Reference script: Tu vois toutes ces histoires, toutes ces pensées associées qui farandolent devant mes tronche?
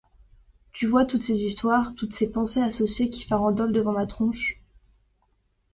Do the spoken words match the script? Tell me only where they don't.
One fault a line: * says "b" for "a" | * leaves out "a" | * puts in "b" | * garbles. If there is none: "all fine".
* says "ma" for "mes"